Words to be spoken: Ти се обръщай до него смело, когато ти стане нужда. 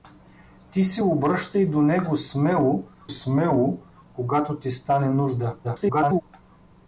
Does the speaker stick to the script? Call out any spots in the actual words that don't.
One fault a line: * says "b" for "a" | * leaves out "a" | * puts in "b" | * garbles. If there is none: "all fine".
* puts in "смело"
* garbles